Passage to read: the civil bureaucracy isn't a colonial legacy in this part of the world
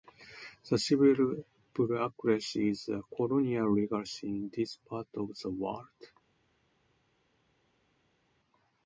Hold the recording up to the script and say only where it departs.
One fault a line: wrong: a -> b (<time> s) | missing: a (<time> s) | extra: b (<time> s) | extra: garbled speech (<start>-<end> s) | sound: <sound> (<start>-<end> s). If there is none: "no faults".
wrong: isn't -> is (2.7 s)